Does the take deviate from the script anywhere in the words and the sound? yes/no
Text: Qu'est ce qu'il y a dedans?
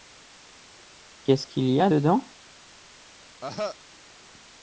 yes